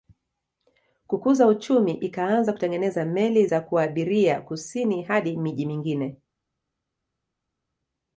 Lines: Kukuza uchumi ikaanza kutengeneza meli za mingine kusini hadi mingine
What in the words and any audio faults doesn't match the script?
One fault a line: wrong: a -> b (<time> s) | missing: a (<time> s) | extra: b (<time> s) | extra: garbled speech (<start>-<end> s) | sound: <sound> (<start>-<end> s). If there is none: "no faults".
wrong: mingine -> kuabiria (3.6 s)
extra: miji (5.4 s)